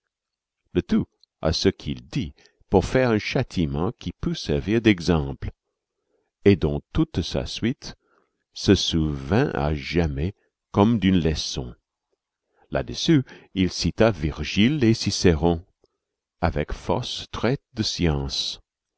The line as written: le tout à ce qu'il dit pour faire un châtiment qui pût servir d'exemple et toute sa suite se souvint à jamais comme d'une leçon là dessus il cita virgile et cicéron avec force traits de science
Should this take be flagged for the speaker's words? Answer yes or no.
yes